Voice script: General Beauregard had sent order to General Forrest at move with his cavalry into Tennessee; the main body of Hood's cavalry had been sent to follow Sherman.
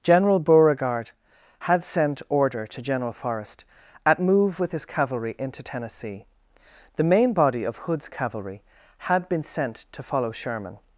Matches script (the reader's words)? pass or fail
pass